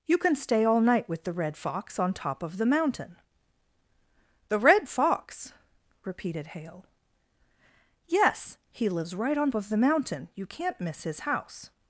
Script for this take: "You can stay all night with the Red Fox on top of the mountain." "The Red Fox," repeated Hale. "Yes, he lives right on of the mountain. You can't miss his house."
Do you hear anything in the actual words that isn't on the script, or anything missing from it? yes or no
no